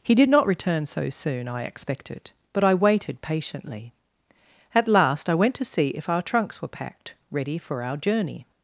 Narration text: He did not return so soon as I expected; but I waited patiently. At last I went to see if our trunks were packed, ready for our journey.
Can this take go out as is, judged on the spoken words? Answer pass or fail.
fail